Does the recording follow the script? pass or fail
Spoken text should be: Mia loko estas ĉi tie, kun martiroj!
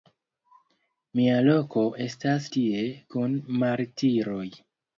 fail